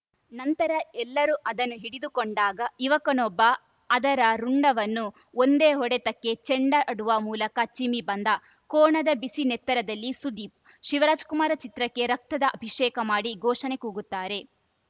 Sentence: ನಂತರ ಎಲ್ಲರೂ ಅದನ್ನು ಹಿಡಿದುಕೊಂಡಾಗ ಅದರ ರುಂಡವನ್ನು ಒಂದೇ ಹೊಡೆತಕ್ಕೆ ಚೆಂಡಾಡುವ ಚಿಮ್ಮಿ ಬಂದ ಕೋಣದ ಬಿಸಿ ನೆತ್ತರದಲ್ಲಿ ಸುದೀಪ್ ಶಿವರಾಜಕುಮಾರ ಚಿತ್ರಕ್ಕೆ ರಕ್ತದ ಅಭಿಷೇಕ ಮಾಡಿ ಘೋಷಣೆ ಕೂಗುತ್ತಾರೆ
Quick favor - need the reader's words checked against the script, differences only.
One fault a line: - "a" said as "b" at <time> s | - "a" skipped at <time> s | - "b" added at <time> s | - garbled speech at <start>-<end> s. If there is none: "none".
- "ಯುವಕನೊಬ್ಬ" added at 2.8 s
- "ಮೂಲಕ" added at 7.2 s